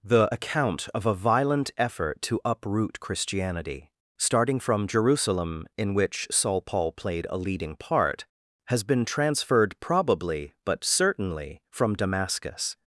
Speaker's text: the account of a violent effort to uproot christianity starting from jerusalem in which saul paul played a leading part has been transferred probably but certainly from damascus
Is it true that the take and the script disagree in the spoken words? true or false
false